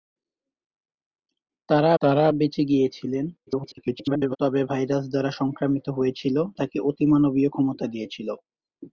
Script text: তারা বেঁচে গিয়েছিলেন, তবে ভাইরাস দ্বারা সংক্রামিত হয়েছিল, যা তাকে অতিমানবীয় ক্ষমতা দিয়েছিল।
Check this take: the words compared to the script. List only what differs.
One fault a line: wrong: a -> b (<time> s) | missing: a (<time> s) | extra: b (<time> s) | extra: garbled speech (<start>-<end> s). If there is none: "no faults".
extra: তারা (2.0 s)
extra: garbled speech (3.5-4.4 s)
missing: যা (6.4 s)